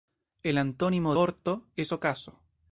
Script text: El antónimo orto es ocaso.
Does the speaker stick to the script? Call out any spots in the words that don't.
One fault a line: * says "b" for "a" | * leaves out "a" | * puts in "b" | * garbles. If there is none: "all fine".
all fine